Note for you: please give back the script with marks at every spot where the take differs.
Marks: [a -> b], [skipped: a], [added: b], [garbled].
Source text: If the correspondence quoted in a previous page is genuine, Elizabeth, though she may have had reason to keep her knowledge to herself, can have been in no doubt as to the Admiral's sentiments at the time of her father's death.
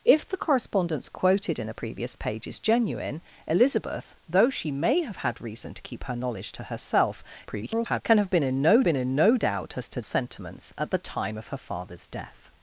If the correspondence quoted in a previous page is genuine, Elizabeth, though she may have had reason to keep her knowledge to herself, [garbled] can have been in no [added: been in no] doubt as to [skipped: the Admiral's] sentiments at the time of her father's death.